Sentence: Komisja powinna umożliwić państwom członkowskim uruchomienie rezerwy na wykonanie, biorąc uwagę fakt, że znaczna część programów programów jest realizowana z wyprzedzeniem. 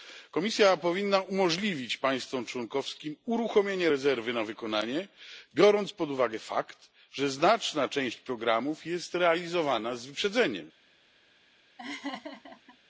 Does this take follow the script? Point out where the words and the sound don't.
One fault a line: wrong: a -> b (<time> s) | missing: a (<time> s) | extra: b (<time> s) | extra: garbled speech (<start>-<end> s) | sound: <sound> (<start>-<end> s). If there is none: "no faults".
extra: pod (5.9 s)
missing: programów (8.9 s)
sound: laugh (11.8-12.8 s)